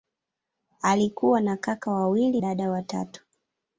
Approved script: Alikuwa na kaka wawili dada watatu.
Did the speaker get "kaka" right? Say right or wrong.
right